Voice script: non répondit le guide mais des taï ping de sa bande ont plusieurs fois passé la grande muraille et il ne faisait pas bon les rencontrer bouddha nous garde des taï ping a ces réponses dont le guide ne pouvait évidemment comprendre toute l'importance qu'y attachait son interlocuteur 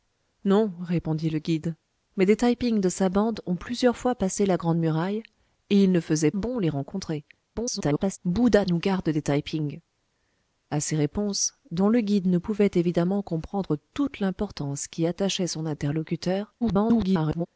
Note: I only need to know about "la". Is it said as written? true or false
true